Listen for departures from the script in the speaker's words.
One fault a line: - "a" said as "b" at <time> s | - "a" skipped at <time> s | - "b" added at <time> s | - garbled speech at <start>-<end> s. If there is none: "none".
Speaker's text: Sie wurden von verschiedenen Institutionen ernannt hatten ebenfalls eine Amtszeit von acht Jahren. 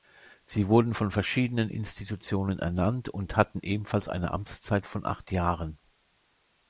- "und" added at 3.1 s